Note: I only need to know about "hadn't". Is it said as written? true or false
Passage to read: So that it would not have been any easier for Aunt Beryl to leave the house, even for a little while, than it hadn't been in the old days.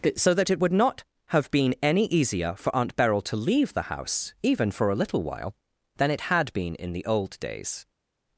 false